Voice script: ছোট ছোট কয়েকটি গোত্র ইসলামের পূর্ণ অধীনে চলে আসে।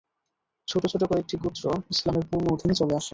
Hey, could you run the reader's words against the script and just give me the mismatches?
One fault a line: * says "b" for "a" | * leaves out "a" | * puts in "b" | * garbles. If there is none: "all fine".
all fine